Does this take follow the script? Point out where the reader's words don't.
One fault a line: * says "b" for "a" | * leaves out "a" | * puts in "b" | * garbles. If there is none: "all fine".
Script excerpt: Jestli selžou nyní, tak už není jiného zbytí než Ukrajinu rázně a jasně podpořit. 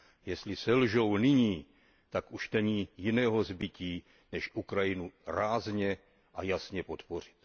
all fine